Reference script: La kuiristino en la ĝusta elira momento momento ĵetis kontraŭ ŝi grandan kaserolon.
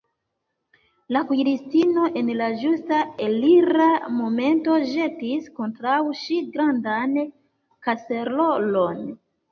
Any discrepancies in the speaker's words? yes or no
yes